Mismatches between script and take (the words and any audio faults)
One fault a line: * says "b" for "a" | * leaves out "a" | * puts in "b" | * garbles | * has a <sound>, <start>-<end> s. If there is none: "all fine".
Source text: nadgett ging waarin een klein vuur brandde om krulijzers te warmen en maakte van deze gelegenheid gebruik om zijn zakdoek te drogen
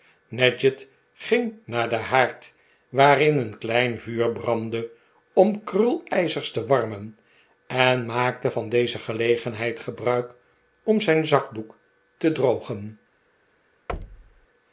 * puts in "naar den haard"
* has a thud, 13.9-14.5 s